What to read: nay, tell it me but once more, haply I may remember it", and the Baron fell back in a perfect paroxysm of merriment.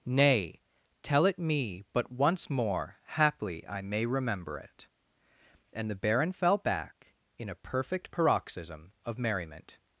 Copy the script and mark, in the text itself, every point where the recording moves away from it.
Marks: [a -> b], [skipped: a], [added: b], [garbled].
nay, tell it me but once more, haply I may remember it", and the Baron fell back in a perfect paroxysm of merriment.